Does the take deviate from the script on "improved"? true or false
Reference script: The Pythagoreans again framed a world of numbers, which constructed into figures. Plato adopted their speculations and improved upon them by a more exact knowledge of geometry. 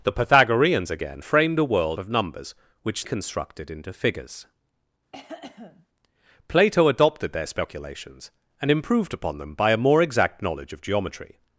false